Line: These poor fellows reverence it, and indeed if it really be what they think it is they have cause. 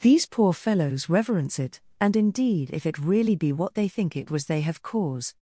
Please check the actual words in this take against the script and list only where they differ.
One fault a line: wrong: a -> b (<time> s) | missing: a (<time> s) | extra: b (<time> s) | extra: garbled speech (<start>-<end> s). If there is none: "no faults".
wrong: is -> was (4.3 s)